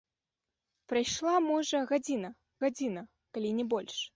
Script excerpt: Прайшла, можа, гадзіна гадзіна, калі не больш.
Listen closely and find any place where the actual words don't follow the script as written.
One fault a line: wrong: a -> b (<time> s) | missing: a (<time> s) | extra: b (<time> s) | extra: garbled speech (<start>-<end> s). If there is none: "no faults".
no faults